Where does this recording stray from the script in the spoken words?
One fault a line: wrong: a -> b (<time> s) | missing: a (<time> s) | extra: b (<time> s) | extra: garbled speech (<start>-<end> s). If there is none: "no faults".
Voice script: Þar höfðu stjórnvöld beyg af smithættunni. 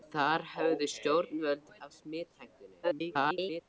missing: beyg (1.7 s)
extra: garbled speech (2.8-3.6 s)